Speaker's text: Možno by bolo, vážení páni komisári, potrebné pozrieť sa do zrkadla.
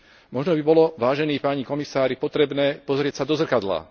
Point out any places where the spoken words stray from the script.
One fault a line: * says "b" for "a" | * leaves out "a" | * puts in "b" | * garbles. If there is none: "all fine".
all fine